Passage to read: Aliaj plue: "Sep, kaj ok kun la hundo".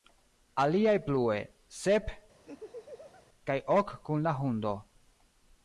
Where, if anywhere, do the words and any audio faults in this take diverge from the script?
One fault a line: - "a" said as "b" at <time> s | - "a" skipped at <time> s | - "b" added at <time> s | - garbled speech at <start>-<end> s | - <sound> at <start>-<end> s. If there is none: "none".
- laugh at 2.5-3.3 s